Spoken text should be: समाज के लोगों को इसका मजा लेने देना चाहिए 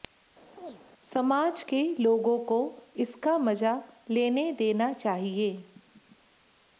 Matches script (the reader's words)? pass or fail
pass